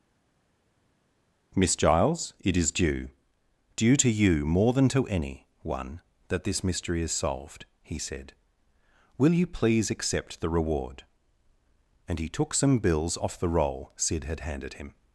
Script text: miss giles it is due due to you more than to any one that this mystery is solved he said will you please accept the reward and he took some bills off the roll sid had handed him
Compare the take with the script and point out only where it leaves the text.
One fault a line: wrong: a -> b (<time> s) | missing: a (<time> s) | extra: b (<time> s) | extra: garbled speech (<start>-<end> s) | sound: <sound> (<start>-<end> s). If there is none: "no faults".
no faults